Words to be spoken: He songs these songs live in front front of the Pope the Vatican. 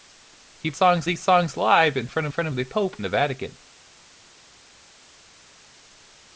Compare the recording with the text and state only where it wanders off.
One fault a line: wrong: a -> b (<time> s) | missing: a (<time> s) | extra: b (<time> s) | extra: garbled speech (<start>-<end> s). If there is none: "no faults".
no faults